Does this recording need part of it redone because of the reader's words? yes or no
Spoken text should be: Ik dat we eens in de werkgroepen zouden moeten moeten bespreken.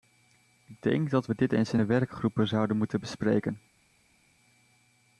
yes